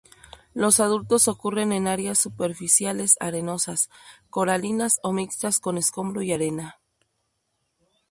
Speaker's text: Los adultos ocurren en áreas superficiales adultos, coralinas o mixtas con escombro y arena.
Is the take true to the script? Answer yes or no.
no